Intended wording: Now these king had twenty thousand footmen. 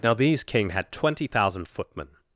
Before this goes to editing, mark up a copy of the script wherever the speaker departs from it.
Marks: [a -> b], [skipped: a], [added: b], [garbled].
Now these king had twenty thousand footmen.